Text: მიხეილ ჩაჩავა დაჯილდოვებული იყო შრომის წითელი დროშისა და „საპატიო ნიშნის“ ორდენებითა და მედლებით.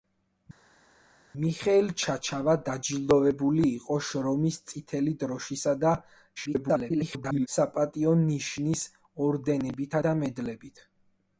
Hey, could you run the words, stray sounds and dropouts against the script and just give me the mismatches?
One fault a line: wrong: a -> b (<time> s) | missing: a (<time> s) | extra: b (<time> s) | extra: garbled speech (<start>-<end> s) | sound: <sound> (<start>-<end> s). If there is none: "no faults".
extra: garbled speech (6.4-7.5 s)